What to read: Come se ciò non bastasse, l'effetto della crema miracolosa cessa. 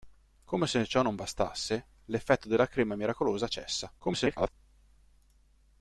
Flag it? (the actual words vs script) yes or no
yes